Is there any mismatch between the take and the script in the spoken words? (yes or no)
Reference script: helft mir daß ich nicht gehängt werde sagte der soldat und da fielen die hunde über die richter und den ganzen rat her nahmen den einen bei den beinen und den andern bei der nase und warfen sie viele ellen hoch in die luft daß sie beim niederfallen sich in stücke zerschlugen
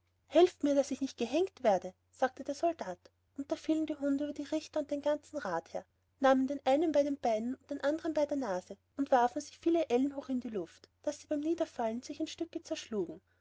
no